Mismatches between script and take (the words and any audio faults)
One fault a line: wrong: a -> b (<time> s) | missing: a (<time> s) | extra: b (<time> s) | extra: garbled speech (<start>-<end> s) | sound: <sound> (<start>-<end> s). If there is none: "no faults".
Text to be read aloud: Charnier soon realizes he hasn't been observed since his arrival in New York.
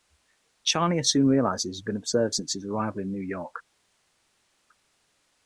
wrong: hasn't -> has (1.7 s)